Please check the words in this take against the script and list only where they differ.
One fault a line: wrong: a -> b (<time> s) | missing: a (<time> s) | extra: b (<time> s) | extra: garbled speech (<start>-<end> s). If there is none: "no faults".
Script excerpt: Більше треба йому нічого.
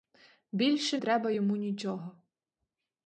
no faults